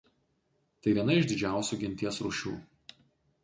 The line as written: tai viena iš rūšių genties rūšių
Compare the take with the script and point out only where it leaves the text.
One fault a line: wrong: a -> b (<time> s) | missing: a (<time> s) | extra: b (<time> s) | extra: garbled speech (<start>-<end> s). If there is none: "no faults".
wrong: rūšių -> didžiausių (1.3 s)